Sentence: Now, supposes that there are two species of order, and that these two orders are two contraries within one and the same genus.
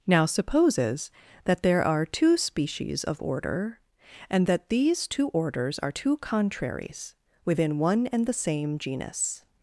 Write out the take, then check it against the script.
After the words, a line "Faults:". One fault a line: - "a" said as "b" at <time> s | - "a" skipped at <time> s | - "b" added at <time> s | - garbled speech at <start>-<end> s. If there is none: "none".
Now, supposes that there are two species of order, and that these two orders are two contraries within one and the same genus.
Faults:
none